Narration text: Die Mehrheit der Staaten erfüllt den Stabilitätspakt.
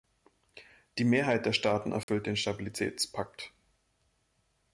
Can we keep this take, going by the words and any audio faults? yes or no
no